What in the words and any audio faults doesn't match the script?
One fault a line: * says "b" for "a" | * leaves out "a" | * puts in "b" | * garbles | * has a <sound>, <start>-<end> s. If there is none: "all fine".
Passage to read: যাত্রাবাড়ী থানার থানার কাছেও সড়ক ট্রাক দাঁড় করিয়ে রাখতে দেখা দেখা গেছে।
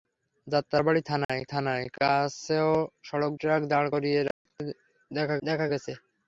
* has a dropout, 1.2-1.3 s
* has a dropout, 4.3-4.5 s